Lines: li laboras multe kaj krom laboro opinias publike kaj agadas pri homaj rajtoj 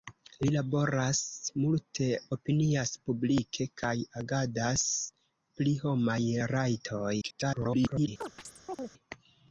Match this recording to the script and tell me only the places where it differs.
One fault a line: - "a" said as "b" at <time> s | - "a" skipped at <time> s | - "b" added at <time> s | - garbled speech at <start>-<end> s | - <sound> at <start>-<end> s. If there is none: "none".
- "kaj krom laboro" skipped at 2.1 s
- garbled speech at 7.2-8.1 s
- chirp at 8.2-8.9 s